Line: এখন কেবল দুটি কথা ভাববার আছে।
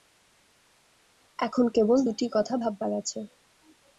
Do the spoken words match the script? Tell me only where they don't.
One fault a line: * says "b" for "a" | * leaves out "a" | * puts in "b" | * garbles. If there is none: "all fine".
all fine